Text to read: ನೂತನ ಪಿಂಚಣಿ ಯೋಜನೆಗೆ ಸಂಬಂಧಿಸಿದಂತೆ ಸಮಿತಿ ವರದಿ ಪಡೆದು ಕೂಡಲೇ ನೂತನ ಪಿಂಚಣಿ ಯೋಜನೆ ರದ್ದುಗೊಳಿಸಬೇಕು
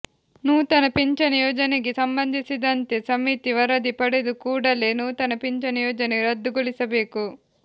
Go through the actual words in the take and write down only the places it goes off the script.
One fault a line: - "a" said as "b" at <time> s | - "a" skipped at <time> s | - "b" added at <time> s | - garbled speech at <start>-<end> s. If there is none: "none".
none